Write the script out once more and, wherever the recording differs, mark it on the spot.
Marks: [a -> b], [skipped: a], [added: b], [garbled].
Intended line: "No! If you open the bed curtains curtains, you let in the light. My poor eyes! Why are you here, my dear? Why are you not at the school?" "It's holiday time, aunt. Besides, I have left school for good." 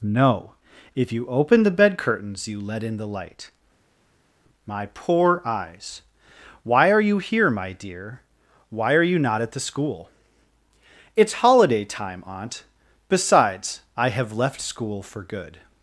"No! If you open the bed curtains [skipped: curtains,] you let in the light. My poor eyes! Why are you here, my dear? Why are you not at the school?" "It's holiday time, aunt. Besides, I have left school for good."